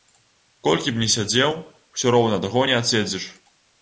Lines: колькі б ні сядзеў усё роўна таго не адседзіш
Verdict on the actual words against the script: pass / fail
pass